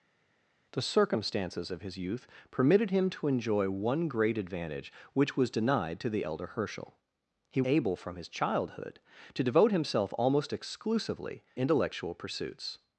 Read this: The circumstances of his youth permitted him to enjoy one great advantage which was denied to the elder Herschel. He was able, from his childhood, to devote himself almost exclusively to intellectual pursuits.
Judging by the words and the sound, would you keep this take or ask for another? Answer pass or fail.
fail